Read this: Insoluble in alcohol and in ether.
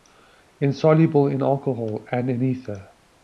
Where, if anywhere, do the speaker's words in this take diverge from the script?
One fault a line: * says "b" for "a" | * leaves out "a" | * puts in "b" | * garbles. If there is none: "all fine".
all fine